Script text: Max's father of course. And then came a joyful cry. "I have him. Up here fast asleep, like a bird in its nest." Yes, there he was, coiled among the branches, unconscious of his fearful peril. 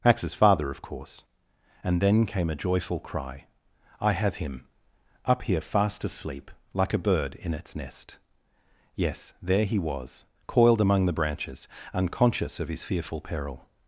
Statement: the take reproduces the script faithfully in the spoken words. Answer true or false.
true